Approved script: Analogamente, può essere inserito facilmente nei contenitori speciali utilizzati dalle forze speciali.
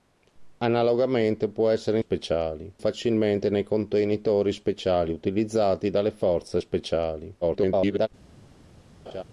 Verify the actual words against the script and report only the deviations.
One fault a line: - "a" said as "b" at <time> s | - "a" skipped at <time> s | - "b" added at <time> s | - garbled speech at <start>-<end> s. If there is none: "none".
- "inserito" said as "speciali" at 2.0 s
- garbled speech at 7.4-8.1 s